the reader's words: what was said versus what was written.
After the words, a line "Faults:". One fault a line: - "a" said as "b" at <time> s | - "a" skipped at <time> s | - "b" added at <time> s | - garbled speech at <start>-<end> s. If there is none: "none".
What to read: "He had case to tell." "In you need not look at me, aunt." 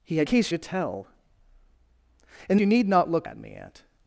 "He had case to tell." "In you need not look at me, aunt."
Faults:
none